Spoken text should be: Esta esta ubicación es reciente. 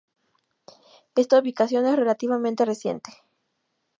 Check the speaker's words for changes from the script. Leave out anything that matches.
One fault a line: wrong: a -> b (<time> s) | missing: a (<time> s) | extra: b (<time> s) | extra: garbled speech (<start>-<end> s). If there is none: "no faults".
missing: esta (1.4 s)
extra: relativamente (1.9 s)